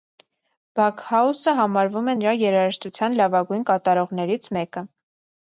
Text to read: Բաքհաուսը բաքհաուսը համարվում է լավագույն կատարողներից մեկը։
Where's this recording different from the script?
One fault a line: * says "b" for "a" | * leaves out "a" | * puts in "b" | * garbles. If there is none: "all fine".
* leaves out "բաքհաուսը"
* puts in "նրա երաժշտության"